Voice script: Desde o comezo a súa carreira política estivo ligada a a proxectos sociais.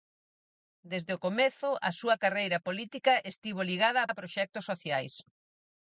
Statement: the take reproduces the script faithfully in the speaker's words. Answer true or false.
true